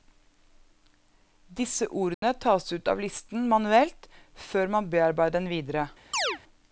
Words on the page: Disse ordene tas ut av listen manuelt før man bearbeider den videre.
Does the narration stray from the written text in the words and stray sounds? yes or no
yes